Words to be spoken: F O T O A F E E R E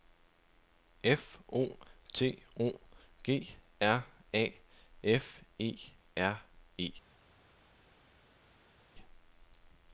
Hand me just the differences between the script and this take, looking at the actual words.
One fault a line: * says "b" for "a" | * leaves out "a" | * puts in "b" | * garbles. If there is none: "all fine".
* puts in "G R"
* leaves out "E"